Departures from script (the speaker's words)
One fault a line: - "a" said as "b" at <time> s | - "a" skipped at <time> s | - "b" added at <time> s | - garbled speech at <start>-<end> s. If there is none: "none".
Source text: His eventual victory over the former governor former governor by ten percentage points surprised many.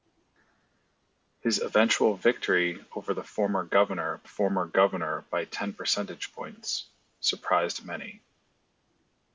none